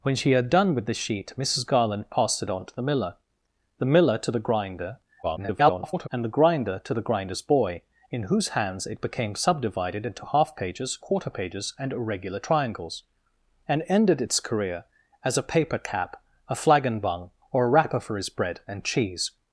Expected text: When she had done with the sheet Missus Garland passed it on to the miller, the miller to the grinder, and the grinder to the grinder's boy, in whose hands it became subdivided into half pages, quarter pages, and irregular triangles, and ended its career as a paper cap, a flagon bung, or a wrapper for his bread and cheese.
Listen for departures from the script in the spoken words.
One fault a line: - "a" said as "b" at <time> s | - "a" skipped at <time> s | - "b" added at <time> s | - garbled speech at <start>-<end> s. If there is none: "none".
- garbled speech at 5.2-6.1 s